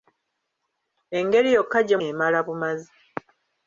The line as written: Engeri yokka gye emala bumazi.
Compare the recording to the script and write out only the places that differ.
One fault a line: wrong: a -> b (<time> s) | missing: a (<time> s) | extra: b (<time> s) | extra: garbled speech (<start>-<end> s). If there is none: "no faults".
no faults